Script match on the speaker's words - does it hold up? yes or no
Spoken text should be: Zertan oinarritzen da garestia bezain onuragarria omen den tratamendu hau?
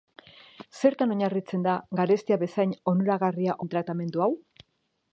no